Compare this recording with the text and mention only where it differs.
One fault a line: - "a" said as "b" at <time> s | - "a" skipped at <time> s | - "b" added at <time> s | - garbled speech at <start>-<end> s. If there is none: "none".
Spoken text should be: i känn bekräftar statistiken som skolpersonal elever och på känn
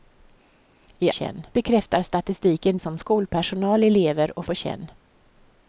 none